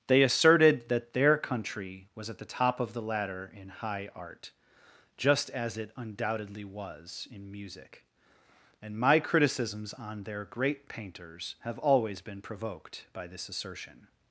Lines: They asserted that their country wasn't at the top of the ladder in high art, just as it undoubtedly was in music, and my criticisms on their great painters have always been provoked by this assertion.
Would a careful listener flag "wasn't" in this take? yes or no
yes